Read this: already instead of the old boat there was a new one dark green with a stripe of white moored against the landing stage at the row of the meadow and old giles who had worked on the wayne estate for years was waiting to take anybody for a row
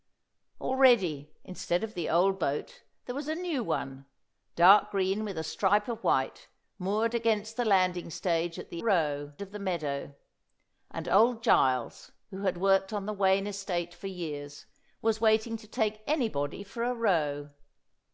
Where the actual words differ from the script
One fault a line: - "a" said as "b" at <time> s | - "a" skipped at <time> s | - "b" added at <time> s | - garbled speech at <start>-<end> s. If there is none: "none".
none